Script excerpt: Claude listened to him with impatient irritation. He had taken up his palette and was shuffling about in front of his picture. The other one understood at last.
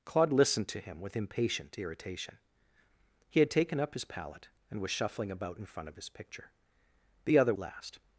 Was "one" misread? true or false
true